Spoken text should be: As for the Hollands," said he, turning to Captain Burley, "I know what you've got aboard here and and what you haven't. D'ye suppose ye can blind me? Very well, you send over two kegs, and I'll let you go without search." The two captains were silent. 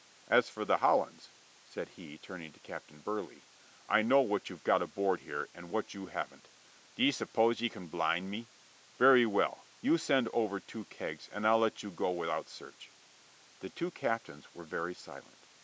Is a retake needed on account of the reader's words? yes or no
yes